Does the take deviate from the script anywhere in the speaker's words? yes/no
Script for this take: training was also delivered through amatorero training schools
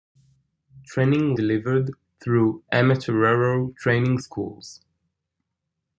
yes